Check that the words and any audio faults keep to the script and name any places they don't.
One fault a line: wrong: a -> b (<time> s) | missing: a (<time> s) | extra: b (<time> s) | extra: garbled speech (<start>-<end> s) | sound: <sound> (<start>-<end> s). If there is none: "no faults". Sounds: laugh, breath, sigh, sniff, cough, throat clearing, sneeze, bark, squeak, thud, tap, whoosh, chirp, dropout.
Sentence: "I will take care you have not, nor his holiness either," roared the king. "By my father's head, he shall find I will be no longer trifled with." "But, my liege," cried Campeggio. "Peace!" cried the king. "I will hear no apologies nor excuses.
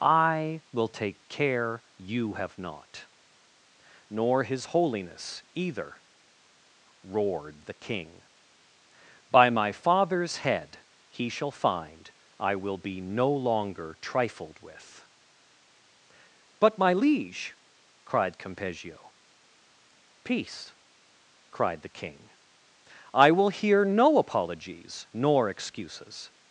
no faults